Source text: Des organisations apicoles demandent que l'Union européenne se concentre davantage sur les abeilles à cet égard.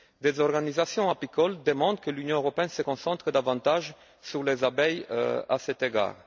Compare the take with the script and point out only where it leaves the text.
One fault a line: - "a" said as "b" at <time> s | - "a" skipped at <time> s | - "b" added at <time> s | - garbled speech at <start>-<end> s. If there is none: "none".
none